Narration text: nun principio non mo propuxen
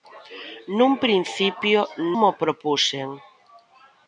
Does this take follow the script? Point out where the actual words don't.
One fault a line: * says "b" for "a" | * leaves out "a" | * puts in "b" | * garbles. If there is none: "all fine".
* leaves out "non"